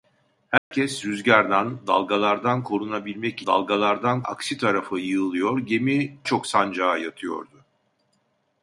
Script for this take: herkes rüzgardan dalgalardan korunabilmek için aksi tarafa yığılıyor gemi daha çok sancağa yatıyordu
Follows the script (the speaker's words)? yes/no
no